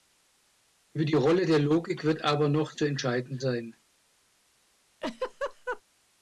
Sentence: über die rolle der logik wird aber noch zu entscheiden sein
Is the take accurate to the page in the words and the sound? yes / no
no